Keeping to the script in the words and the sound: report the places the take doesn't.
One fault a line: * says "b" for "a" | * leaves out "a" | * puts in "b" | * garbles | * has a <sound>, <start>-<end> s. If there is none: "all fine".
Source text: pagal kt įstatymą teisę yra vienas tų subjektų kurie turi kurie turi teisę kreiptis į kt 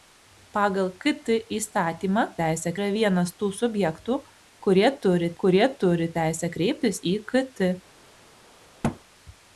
* has a thud, 8.8-9.0 s